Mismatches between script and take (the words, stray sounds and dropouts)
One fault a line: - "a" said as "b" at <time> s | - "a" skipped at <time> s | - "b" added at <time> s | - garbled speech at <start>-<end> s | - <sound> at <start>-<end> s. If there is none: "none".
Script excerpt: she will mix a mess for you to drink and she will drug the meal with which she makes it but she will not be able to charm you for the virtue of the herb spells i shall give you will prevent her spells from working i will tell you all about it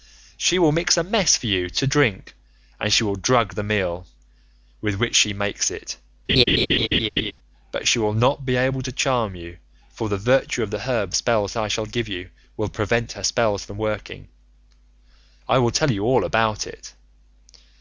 - laugh at 6.3-7.3 s